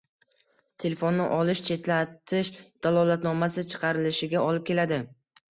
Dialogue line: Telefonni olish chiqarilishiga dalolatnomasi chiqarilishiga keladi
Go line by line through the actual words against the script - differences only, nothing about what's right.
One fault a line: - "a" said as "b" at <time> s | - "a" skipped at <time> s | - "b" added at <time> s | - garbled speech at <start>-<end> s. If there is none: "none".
- "chiqarilishiga" said as "chetlatish" at 1.7 s
- "olib" added at 4.5 s